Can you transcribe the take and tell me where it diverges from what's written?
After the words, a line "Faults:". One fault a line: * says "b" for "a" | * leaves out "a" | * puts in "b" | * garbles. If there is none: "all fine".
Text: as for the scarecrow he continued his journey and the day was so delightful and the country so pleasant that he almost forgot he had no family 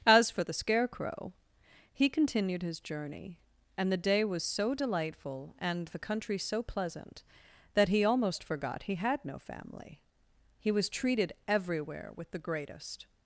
as for the scarecrow he continued his journey and the day was so delightful and the country so pleasant that he almost forgot he had no family he was treated everywhere with the greatest
Faults:
* puts in "he was treated everywhere with the greatest"